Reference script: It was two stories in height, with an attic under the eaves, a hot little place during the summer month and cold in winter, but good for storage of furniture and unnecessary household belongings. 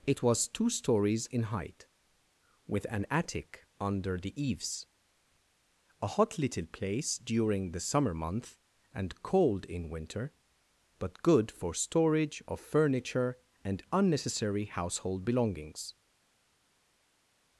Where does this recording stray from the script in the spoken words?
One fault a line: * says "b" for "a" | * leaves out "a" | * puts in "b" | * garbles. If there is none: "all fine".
all fine